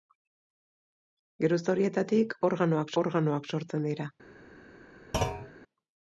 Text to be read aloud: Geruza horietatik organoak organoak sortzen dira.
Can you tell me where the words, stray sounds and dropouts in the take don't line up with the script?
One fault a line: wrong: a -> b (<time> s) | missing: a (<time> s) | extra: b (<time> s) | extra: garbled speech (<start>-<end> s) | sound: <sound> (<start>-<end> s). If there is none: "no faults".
sound: thud (5.1-5.5 s)